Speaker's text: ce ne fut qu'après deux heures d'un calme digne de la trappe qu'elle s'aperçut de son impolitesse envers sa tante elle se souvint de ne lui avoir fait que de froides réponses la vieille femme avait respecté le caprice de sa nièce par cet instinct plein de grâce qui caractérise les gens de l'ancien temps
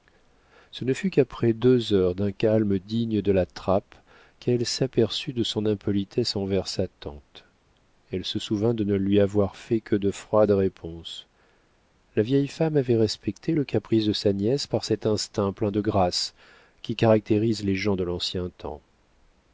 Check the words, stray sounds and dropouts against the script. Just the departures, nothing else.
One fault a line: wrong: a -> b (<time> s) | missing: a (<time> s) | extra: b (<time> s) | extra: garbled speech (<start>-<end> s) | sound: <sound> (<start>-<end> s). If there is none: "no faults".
no faults